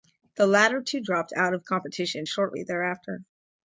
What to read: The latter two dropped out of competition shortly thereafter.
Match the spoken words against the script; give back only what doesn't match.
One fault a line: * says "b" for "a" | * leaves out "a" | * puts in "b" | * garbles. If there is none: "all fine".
all fine